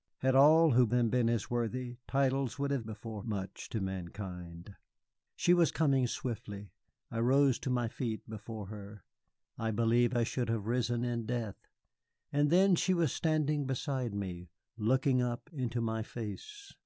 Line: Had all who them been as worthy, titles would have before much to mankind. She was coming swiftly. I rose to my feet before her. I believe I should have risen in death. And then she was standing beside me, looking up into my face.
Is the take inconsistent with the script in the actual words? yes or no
no